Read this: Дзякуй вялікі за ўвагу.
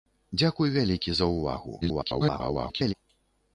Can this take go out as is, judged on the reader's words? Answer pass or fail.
fail